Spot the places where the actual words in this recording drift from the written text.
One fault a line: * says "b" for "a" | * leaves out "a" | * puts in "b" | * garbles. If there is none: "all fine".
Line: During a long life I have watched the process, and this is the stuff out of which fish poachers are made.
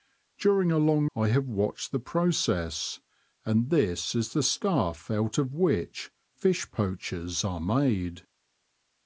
* leaves out "life"